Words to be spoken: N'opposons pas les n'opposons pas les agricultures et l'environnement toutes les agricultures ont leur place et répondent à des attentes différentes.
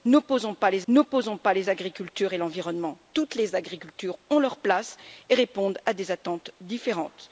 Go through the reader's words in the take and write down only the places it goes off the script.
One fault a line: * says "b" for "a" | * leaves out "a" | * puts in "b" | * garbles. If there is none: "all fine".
all fine